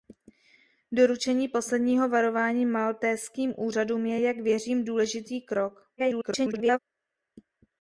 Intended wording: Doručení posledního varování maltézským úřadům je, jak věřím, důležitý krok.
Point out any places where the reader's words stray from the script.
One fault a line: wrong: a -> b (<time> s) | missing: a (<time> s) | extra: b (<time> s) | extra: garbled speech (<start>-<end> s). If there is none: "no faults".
extra: garbled speech (6.0-6.8 s)